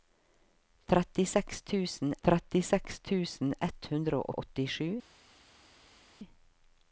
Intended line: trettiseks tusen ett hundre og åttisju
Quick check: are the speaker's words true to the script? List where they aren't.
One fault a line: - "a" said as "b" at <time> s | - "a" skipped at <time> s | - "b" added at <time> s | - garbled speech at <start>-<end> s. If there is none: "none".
- "trettiseks tusen" added at 2.2 s
- "og" added at 4.3 s